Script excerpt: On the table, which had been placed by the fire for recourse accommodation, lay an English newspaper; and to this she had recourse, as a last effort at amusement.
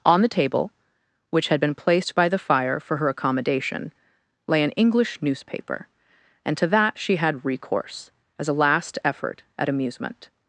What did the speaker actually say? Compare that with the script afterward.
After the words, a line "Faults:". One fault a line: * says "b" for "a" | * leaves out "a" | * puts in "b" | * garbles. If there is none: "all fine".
On the table, which had been placed by the fire for her accommodation, lay an English newspaper; and to that she had recourse, as a last effort at amusement.
Faults:
* says "her" for "recourse"
* says "that" for "this"